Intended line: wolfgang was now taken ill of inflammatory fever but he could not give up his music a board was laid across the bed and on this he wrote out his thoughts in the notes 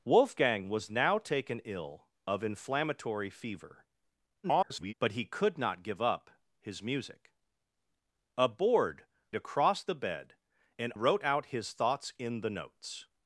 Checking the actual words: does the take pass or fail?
fail